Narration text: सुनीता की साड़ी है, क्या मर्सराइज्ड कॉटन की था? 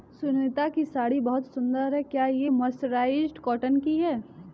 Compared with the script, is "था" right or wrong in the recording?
wrong